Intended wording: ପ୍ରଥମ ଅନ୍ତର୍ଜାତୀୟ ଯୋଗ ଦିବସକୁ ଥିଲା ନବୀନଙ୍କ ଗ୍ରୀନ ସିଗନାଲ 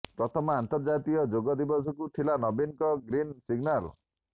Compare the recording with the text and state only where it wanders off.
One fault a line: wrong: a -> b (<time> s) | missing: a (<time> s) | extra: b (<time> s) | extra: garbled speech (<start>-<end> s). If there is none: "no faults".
no faults